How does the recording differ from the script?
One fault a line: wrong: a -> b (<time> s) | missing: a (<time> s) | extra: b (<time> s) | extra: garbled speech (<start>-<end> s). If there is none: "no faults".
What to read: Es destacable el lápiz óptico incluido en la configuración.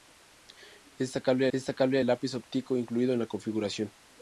extra: destacable (1.5 s)